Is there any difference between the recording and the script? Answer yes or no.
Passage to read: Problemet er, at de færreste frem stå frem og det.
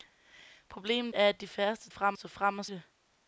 no